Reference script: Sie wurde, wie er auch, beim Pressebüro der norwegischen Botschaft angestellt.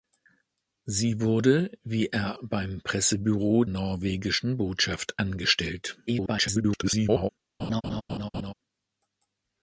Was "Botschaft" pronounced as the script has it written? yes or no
yes